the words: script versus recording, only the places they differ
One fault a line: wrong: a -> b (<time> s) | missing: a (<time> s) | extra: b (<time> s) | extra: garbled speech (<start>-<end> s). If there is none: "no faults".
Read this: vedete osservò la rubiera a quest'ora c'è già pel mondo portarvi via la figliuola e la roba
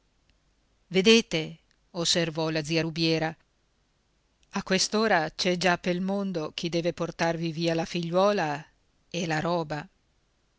extra: zia (2.6 s)
extra: chi deve (6.5 s)